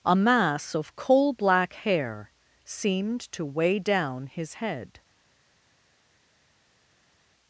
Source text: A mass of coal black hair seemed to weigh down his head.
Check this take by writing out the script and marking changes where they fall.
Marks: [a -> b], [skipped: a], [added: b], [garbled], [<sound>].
A mass of coal black hair seemed to weigh down his head.